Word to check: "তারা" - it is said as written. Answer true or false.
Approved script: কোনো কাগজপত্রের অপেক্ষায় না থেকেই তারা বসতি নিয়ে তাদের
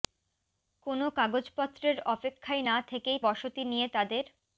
false